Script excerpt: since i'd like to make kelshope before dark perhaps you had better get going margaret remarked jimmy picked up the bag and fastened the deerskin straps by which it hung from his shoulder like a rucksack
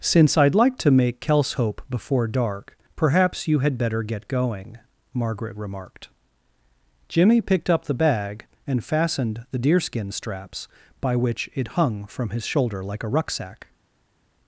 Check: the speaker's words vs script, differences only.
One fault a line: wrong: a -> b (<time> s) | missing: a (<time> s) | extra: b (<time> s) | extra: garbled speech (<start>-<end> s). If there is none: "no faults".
no faults